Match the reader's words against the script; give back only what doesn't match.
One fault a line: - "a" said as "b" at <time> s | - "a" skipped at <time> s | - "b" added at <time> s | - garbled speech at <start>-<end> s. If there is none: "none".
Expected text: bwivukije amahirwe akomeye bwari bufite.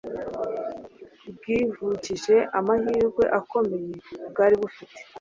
none